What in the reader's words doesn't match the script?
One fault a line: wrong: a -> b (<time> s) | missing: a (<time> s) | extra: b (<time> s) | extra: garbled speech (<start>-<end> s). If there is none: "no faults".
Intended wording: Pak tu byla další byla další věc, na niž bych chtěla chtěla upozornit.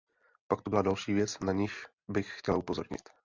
missing: byla další (1.1 s)
missing: chtěla (2.6 s)